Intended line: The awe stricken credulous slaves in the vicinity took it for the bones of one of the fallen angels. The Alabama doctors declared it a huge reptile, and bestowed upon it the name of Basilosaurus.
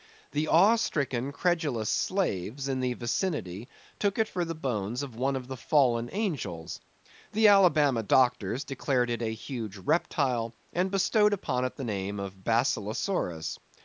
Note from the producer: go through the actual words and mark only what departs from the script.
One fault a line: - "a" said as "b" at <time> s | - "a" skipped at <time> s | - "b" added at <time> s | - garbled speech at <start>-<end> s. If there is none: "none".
none